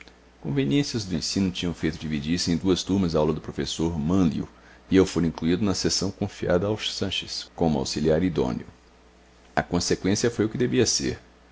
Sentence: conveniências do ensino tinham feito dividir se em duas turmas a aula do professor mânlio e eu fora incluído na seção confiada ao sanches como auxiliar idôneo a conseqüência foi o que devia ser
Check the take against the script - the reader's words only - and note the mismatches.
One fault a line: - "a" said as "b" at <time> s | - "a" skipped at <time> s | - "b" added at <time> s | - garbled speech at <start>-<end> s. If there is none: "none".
none